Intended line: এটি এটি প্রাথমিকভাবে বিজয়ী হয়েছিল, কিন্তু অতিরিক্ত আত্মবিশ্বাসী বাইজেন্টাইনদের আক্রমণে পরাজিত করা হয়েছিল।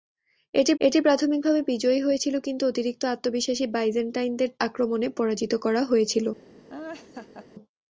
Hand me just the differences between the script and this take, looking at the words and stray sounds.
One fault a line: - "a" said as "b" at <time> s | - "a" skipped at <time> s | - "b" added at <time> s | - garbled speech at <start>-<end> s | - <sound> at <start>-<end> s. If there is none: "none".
- laugh at 6.7-7.5 s